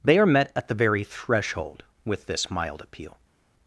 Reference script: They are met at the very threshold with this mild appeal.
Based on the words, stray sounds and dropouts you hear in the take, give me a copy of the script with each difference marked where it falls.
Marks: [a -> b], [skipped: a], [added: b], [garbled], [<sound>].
They are met at the very threshold with this mild appeal.